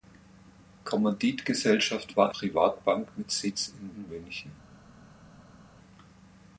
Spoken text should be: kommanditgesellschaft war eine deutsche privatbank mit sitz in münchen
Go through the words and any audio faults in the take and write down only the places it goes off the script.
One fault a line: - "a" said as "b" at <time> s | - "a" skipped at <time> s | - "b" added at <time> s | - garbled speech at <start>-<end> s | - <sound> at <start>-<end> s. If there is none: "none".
- "eine deutsche" skipped at 2.3 s
- "in" added at 3.9 s